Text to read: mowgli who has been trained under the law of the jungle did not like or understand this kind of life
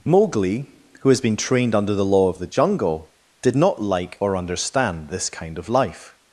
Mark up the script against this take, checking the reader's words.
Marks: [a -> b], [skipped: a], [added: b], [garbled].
mowgli who has been trained under the law of the jungle did not like or understand this kind of life